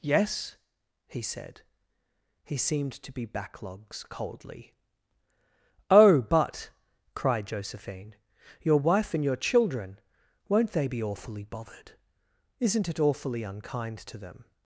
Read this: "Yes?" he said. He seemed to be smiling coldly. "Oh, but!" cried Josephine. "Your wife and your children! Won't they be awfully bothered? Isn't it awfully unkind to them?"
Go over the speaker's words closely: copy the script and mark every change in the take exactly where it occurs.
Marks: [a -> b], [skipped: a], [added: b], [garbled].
"Yes?" he said. He seemed to be [smiling -> backlogs] coldly. "Oh, but!" cried Josephine. "Your wife and your children! Won't they be awfully bothered? Isn't it awfully unkind to them?"